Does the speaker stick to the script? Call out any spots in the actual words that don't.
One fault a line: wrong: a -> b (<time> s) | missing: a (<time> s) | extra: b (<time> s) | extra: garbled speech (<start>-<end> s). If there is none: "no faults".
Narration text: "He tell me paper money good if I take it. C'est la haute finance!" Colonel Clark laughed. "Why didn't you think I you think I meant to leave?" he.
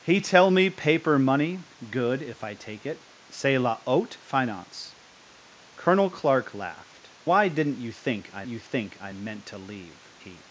no faults